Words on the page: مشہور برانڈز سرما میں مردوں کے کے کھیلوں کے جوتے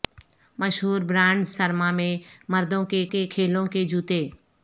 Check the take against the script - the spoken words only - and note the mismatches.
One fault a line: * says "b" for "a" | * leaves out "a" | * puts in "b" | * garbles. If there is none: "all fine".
all fine